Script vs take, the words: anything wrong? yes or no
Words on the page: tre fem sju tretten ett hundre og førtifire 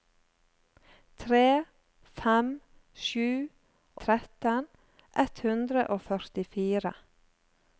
no